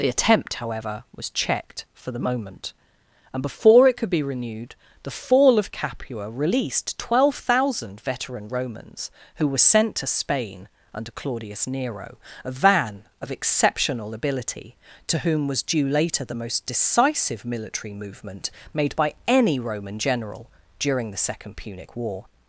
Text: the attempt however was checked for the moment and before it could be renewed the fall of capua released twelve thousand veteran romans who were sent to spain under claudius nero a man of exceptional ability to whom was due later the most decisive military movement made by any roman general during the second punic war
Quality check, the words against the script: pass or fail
fail